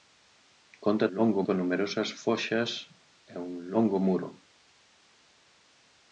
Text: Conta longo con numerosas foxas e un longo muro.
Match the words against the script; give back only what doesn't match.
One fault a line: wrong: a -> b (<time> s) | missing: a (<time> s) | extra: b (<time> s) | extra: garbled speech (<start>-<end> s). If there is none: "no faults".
no faults